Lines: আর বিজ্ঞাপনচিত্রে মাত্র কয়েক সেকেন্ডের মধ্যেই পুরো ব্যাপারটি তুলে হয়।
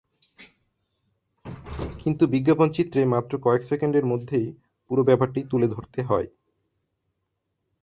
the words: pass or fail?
fail